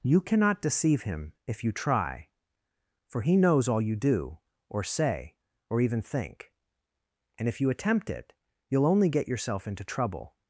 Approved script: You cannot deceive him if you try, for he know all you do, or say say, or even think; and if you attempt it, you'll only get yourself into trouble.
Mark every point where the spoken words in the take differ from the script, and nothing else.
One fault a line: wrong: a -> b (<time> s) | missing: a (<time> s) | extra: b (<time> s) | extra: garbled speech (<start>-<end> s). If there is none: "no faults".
wrong: know -> knows (3.4 s)
missing: say (5.4 s)